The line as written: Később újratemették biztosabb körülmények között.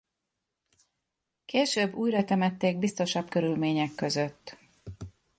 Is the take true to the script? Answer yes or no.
yes